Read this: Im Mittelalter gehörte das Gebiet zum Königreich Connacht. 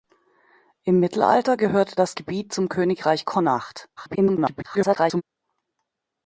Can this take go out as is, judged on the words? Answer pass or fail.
fail